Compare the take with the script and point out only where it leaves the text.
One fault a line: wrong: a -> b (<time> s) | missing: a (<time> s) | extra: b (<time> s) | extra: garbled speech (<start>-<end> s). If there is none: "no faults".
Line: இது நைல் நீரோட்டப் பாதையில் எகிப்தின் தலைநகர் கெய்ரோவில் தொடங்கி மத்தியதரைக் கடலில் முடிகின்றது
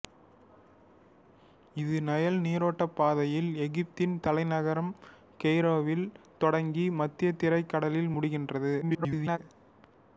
extra: garbled speech (8.8-9.4 s)